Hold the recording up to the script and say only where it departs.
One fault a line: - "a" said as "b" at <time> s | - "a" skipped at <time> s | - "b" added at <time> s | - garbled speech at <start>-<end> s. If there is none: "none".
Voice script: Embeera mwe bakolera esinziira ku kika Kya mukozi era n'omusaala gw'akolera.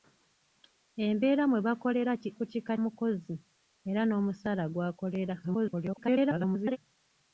- "esinziira" skipped at 2.1 s
- "Kya" skipped at 2.7 s
- garbled speech at 5.4-6.8 s